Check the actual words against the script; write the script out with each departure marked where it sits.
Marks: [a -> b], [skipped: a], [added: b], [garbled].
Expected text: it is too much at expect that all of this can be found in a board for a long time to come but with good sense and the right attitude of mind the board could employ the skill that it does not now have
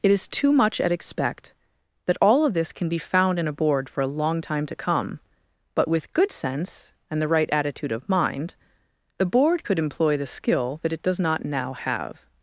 it is too much at expect that all of this can be found in a board for a long time to come but with good sense and the right attitude of mind the board could employ the skill that it does not now have